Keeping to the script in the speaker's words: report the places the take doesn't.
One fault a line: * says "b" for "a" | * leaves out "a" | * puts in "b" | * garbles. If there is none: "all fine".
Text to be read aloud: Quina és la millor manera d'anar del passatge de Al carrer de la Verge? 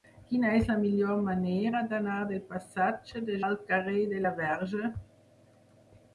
all fine